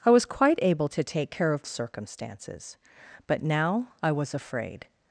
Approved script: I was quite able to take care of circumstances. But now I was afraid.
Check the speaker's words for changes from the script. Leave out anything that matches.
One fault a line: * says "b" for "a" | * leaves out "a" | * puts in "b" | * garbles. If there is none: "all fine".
all fine